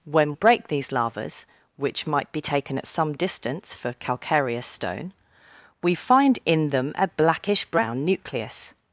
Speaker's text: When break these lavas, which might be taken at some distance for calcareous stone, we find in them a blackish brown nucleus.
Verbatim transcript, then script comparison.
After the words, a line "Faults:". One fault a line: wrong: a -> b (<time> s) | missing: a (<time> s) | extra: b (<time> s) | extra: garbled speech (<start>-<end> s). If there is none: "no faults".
When break these lavas, which might be taken at some distance for calcareous stone, we find in them a blackish brown nucleus.
Faults:
no faults